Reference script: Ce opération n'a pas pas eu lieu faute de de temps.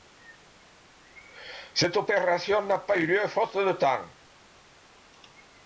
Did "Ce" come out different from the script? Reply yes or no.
yes